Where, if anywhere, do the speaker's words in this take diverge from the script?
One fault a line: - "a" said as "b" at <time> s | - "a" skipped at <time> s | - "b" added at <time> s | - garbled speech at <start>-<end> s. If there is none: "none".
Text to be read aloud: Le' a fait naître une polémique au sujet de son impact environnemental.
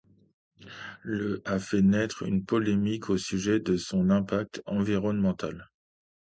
none